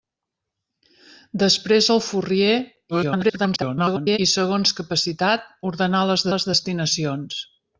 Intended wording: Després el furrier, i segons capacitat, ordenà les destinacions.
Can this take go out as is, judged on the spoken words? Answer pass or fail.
fail